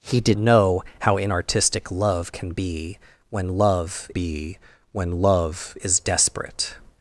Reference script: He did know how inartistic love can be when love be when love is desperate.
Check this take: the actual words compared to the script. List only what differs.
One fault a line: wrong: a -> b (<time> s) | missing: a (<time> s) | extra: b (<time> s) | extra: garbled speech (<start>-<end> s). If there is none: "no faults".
no faults